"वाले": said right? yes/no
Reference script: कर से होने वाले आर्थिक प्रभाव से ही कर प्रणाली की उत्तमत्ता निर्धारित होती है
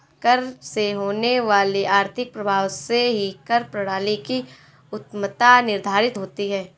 yes